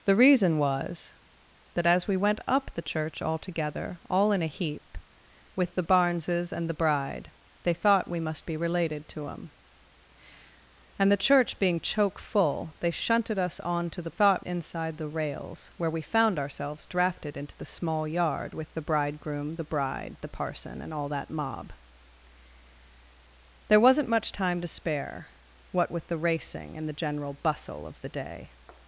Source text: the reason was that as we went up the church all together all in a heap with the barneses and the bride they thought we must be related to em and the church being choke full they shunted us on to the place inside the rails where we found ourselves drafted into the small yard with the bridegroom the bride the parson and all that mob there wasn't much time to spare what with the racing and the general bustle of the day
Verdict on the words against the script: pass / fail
fail